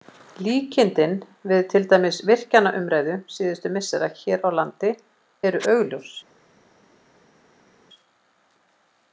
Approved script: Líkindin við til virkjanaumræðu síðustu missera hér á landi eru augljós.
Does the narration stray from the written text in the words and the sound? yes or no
yes